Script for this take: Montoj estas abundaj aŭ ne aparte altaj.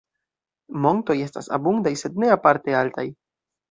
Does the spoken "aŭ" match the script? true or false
false